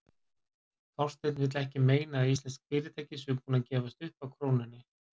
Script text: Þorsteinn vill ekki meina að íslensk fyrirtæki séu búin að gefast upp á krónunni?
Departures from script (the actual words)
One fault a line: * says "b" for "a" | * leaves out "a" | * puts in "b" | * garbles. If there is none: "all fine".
all fine